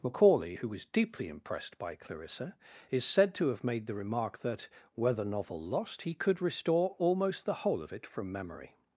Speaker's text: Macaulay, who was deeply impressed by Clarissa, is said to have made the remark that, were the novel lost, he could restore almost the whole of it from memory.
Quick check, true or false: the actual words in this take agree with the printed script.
true